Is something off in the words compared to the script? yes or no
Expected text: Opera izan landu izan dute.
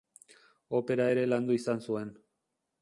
yes